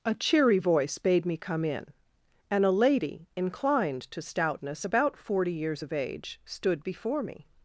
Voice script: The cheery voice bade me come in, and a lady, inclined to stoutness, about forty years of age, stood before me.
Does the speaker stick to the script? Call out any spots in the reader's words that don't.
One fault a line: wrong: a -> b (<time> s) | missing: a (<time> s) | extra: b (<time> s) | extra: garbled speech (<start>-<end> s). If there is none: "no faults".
wrong: The -> A (0.0 s)